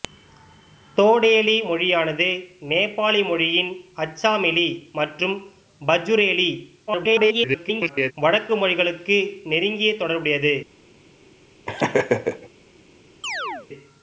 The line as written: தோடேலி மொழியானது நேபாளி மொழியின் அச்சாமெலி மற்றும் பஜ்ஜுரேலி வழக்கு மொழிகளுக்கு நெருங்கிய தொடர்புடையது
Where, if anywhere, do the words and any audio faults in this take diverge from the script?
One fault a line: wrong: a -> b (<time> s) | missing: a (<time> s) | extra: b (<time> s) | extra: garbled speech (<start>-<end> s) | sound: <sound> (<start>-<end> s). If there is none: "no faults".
extra: garbled speech (6.9-8.1 s)
sound: laugh (11.7-12.5 s)
sound: chirp (13.2-13.7 s)